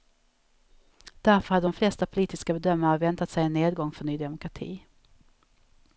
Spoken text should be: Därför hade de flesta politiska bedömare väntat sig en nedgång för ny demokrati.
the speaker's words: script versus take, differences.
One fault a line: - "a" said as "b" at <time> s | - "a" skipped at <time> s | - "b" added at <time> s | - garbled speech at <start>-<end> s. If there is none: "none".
none